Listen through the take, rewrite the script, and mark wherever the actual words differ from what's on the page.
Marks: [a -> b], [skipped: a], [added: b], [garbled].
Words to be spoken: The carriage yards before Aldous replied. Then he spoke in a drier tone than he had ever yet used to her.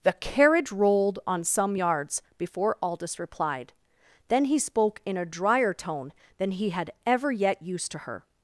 The carriage [added: rolled on some] yards before Aldous replied. Then he spoke in a drier tone than he had ever yet used to her.